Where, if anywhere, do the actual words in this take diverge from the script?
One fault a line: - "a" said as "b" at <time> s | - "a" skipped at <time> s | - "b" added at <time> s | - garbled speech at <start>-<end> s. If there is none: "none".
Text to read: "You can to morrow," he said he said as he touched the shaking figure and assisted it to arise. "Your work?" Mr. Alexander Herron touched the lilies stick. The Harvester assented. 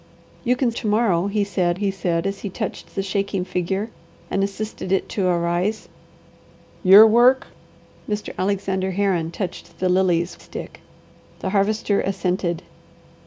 none